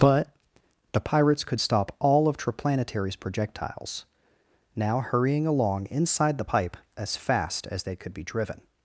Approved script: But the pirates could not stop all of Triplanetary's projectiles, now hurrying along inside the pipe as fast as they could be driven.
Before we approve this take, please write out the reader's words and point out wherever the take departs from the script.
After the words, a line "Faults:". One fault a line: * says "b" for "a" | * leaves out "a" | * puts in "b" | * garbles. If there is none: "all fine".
But the pirates could stop all of Triplanetary's projectiles, now hurrying along inside the pipe as fast as they could be driven.
Faults:
* leaves out "not"